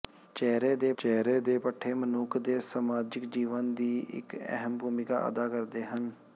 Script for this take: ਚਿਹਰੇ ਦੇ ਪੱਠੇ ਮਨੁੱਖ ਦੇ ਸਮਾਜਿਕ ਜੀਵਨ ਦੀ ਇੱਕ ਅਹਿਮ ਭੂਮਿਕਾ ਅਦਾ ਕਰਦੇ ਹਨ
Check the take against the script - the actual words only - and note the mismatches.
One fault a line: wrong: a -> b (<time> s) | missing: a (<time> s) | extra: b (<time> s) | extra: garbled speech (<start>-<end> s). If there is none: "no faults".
extra: ਚਿਹਰੇ ਦੇ (1.0 s)